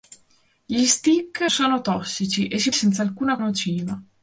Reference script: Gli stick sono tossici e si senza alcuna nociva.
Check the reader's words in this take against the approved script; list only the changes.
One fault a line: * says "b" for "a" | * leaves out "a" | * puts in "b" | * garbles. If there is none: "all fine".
all fine